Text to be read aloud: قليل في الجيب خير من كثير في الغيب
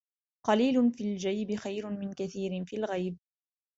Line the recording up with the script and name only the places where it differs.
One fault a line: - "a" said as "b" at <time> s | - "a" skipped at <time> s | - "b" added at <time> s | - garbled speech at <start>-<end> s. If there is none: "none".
none